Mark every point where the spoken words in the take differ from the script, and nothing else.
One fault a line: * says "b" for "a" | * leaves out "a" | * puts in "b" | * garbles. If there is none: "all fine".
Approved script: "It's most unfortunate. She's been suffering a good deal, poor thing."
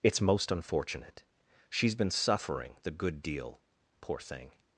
* says "the" for "a"